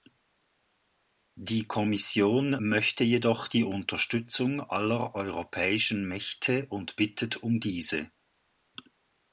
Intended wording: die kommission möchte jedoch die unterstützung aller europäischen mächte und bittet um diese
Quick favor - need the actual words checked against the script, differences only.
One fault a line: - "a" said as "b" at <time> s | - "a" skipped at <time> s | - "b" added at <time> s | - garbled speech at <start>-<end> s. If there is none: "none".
none